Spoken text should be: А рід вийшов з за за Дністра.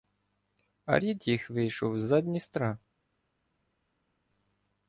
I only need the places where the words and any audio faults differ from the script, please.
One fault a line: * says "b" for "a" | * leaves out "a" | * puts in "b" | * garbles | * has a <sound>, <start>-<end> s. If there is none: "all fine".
* puts in "їх"
* leaves out "за"